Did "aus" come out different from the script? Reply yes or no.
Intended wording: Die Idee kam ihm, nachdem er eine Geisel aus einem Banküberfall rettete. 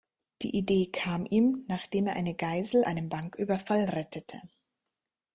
yes